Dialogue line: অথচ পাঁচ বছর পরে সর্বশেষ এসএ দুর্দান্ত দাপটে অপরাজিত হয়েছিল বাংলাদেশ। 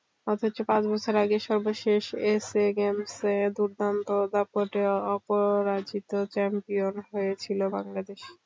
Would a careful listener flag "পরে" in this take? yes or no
yes